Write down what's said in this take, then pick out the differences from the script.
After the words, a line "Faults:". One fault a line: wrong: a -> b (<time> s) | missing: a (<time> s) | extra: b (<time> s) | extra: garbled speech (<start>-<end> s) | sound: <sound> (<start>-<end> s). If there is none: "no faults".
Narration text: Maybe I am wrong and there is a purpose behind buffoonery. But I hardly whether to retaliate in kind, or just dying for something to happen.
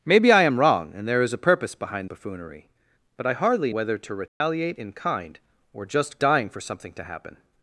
Maybe I am wrong and there is a purpose behind buffoonery. But I hardly whether to retaliate in kind, or just dying for something to happen.
Faults:
sound: dropout (4.3-4.4 s)